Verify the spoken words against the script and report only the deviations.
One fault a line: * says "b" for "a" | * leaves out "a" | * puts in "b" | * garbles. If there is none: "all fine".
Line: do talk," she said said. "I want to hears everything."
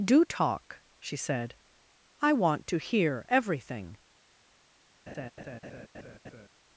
* leaves out "said"
* says "hear" for "hears"